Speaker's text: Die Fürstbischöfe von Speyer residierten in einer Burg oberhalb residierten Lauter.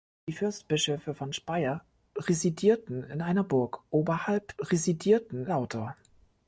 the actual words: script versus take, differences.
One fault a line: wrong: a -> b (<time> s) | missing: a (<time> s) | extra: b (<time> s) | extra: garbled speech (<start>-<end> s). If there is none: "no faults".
no faults